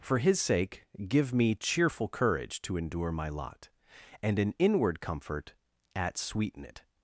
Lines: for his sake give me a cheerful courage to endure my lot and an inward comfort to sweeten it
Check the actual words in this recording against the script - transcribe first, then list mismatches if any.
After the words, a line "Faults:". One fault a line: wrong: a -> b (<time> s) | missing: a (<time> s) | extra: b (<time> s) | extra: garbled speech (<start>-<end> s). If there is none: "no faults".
for his sake give me cheerful courage to endure my lot and an inward comfort at sweeten it
Faults:
missing: a (1.6 s)
wrong: to -> at (5.9 s)